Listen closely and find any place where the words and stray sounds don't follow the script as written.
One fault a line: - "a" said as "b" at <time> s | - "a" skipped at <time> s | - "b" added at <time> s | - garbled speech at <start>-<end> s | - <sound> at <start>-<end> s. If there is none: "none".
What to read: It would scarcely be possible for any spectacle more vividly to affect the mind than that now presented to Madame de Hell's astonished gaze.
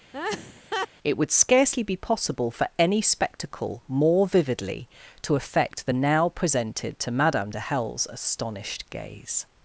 - laugh at 0.1-0.9 s
- "mind than that" skipped at 5.9 s